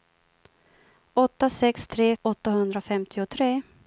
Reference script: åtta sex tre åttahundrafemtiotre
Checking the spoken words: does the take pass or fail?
pass